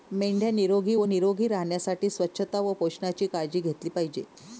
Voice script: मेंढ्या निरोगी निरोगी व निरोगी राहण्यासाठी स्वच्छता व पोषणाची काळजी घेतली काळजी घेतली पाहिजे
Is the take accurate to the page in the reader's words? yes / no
no